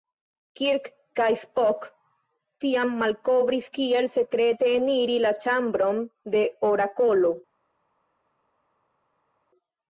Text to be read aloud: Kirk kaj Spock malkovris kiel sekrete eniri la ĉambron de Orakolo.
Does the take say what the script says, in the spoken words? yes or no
no